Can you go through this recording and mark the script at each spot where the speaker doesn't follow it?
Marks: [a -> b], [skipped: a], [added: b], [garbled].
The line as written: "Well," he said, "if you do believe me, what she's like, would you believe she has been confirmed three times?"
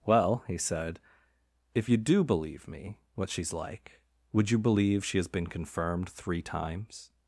"Well," he said, "if you do believe me, what she's like, would you believe she has been confirmed three times?"